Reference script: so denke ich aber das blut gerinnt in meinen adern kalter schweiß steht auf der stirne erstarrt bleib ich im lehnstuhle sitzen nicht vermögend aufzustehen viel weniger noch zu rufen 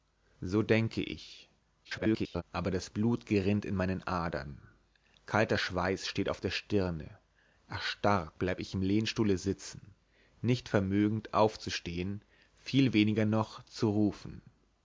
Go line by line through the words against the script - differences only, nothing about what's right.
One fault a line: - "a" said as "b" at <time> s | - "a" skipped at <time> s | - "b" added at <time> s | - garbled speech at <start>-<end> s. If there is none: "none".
- garbled speech at 1.8-2.4 s